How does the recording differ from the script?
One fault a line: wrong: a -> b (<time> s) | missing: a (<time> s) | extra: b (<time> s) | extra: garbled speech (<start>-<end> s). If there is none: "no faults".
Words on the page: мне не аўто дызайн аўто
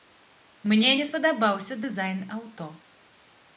wrong: аўто -> спадабаўся (1.1 s)